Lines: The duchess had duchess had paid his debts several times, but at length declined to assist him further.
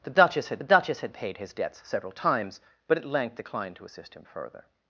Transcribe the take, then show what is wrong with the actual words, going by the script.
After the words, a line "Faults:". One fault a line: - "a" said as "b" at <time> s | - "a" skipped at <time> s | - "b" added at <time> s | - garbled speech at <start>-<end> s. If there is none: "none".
The duchess had duchess had paid his debts several times, but at length declined to assist him further.
Faults:
none